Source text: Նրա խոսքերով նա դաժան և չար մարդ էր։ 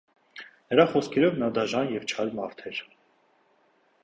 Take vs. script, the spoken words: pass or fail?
pass